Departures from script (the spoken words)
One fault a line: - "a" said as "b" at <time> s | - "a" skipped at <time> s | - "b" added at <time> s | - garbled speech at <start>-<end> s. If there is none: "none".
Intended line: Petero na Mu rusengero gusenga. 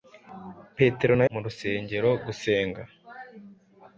none